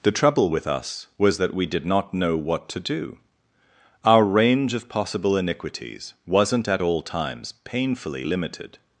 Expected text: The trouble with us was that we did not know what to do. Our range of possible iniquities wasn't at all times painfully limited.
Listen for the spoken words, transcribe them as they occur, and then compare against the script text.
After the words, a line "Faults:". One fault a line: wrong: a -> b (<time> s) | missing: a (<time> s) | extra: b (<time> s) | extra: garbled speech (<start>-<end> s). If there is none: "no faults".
The trouble with us was that we did not know what to do. Our range of possible iniquities wasn't at all times painfully limited.
Faults:
no faults